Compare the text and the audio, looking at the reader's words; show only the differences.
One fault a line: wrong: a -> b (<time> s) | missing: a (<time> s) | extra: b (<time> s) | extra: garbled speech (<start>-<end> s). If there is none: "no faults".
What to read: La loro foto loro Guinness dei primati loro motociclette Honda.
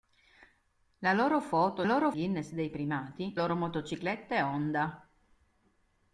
no faults